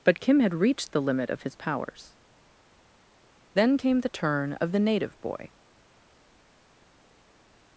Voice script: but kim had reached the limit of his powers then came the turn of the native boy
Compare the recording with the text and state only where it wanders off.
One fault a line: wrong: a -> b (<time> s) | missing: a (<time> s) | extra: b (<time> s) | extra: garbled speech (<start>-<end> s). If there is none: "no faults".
no faults